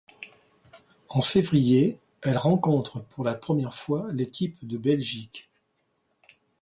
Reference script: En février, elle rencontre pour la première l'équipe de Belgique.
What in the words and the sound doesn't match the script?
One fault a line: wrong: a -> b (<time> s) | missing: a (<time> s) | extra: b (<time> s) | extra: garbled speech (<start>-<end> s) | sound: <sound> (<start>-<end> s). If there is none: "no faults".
extra: fois (3.8 s)